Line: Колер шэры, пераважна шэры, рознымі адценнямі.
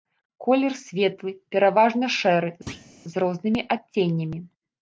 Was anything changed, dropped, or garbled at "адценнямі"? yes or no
no